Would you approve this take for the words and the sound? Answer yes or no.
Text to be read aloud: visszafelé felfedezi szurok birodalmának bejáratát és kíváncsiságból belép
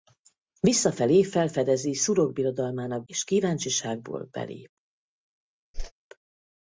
no